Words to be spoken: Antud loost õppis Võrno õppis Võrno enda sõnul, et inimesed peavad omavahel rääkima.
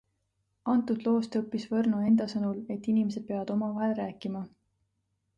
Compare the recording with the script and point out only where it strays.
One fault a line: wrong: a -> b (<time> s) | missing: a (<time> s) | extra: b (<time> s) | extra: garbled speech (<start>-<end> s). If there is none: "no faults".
missing: õppis Võrno (2.0 s)